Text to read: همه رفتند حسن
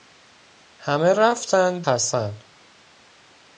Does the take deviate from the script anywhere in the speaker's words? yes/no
no